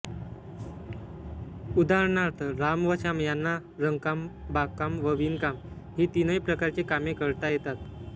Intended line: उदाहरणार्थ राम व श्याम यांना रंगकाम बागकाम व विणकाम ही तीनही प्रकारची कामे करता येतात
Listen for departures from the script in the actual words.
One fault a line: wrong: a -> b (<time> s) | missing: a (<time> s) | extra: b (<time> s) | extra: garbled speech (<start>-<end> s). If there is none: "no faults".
no faults